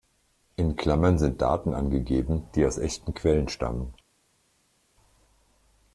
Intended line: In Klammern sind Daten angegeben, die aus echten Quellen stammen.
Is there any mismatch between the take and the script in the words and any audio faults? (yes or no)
no